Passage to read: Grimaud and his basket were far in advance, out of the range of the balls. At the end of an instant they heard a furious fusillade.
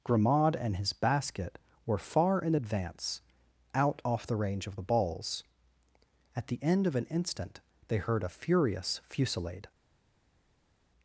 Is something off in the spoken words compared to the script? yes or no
yes